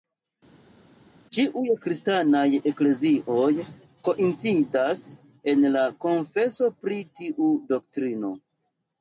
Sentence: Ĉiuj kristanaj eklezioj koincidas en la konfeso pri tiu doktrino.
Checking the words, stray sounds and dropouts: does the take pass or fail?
pass